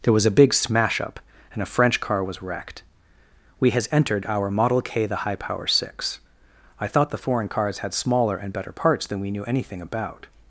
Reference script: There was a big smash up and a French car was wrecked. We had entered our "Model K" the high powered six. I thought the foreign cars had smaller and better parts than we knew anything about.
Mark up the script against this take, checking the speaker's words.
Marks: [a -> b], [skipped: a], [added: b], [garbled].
There was a big smash up and a French car was wrecked. We [had -> has] entered our "Model K" the high [powered -> power] six. I thought the foreign cars had smaller and better parts than we knew anything about.